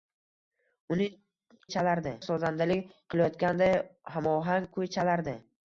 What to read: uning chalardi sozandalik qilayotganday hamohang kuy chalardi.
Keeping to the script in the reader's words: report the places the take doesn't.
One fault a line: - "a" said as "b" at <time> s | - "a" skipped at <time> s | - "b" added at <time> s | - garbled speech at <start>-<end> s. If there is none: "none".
none